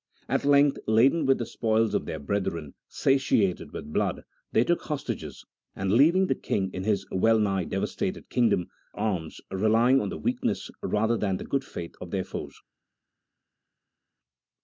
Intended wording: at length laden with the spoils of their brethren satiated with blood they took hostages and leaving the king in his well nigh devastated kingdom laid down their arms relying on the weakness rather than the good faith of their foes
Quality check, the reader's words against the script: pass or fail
fail